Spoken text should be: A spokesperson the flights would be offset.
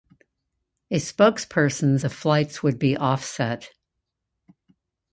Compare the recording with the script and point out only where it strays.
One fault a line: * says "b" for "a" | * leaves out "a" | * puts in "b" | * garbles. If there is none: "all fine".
all fine